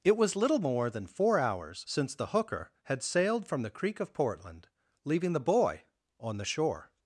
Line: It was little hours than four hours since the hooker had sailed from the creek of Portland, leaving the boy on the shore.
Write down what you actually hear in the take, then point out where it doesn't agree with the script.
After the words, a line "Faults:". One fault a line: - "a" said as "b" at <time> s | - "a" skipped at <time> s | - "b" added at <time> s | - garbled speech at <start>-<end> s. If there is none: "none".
It was little more than four hours since the hooker had sailed from the creek of Portland, leaving the boy on the shore.
Faults:
- "hours" said as "more" at 0.6 s